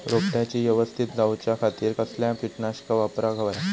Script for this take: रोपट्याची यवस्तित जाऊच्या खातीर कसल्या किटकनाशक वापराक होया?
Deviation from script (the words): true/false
false